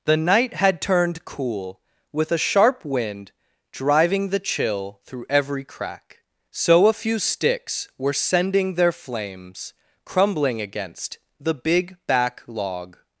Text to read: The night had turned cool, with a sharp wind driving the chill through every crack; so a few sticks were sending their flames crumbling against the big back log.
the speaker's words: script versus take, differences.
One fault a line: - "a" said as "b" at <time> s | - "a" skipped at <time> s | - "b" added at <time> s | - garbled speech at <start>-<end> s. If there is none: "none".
none